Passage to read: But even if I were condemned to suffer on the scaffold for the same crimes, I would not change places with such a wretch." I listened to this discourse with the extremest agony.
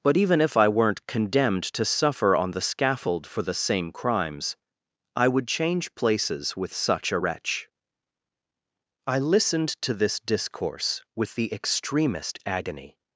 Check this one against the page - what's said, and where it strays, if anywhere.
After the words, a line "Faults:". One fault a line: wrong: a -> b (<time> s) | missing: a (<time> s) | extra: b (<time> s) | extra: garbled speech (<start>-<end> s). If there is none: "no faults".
But even if I weren't condemned to suffer on the scaffold for the same crimes, I would change places with such a wretch." I listened to this discourse with the extremest agony.
Faults:
wrong: were -> weren't (0.7 s)
missing: not (5.5 s)